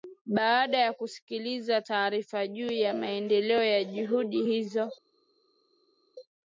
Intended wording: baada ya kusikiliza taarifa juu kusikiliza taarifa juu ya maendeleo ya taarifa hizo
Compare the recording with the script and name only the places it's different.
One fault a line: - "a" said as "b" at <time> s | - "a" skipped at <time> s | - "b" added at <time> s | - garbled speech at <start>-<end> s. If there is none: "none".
- "kusikiliza taarifa juu" skipped at 2.7 s
- "taarifa" said as "juhudi" at 3.8 s